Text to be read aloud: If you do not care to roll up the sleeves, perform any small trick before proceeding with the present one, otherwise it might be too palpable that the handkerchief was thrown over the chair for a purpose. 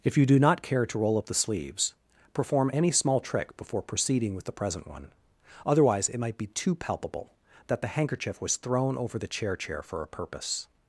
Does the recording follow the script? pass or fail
fail